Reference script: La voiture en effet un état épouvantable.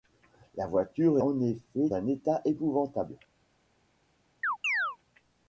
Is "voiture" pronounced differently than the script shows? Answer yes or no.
no